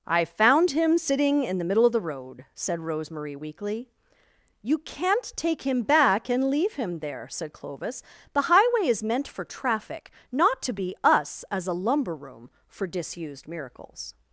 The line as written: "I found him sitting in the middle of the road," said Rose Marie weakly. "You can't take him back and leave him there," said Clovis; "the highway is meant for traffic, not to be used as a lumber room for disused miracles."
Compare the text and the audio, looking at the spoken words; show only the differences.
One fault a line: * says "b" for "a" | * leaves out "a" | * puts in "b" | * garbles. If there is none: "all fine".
* says "us" for "used"